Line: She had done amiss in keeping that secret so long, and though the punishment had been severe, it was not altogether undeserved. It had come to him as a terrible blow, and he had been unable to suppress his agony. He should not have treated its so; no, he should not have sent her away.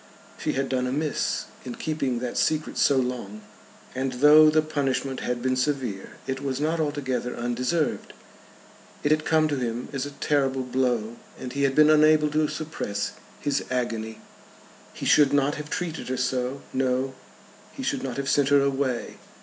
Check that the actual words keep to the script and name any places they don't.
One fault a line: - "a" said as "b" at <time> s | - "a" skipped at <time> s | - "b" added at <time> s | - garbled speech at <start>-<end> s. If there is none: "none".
- "its" said as "her" at 16.1 s